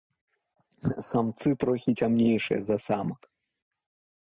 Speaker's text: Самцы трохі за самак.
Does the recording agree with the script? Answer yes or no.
no